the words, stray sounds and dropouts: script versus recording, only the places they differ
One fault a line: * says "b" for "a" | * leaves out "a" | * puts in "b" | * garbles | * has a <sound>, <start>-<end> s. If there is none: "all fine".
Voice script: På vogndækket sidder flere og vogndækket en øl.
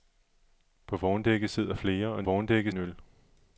all fine